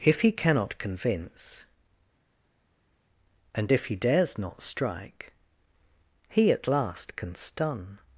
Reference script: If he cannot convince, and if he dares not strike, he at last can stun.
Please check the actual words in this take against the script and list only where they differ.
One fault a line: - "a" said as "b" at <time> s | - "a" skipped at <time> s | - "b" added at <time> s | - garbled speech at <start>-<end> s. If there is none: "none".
none